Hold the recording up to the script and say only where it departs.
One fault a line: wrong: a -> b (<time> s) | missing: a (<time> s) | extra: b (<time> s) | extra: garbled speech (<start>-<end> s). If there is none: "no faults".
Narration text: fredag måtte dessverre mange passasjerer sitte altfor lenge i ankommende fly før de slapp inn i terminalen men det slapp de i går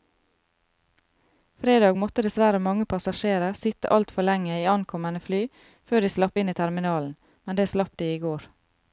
no faults